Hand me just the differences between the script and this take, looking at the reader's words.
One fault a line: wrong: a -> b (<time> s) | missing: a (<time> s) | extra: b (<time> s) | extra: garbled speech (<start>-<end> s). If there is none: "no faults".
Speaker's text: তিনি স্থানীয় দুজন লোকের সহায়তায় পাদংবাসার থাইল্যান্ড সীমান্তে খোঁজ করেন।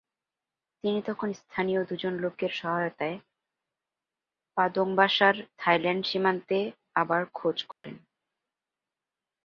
extra: তখন (1.0 s)
extra: আবার (6.9 s)